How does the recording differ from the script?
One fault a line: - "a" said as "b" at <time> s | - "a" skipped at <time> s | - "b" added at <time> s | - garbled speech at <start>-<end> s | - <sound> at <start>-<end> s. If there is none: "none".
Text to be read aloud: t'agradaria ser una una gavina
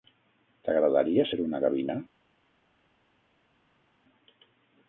- "una" skipped at 1.6 s